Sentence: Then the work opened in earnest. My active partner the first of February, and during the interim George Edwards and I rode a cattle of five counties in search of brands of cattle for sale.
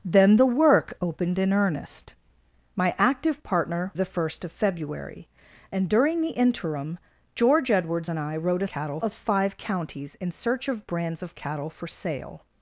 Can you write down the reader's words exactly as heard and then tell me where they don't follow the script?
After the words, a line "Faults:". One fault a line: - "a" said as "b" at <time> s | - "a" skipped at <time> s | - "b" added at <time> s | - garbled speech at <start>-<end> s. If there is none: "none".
Then the work opened in earnest. My active partner the first of February, and during the interim George Edwards and I rode a cattle of five counties in search of brands of cattle for sale.
Faults:
none